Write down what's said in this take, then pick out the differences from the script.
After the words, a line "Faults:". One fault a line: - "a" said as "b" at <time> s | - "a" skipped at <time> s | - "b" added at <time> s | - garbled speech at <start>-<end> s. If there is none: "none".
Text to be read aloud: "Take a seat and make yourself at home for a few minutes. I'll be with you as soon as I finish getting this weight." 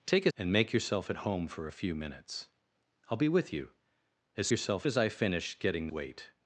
"Take a and make yourself at home for a few minutes. I'll be with you as yourself as I finish getting weight."
Faults:
- "seat" skipped at 0.3 s
- "soon" said as "yourself" at 4.5 s
- "this" skipped at 5.9 s